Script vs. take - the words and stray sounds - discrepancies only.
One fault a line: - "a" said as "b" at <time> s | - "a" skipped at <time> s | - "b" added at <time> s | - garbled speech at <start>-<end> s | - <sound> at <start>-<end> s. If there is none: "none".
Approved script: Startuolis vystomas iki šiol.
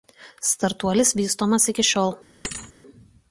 - thud at 2.4-2.7 s